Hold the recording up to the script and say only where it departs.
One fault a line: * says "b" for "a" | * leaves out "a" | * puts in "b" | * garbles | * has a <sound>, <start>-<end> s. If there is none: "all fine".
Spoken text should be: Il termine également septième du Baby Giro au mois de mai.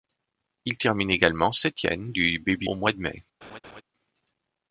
* leaves out "Giro"
* has a laugh, 3.4-3.8 s